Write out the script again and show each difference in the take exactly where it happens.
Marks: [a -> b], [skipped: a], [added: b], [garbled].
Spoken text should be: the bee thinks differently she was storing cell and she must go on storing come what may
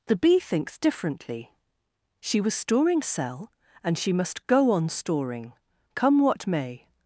the bee thinks differently she was storing cell and she must go on storing come what may